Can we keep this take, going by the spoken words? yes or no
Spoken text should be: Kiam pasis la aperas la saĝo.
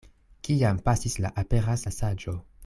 yes